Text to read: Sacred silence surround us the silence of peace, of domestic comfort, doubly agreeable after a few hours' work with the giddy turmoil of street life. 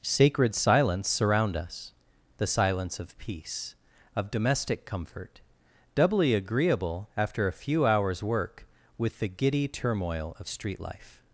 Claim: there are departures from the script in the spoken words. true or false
false